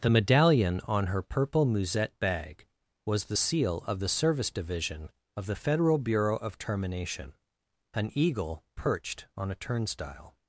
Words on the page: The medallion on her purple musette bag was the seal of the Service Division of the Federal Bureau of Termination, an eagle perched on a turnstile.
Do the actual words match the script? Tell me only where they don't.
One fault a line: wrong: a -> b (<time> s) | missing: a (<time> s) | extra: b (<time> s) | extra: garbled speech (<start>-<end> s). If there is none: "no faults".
no faults